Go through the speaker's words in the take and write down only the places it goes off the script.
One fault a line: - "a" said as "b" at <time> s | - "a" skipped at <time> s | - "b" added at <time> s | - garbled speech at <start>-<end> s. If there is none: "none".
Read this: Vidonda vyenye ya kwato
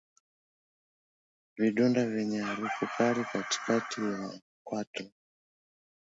- "harufu kali katikati" added at 2.4 s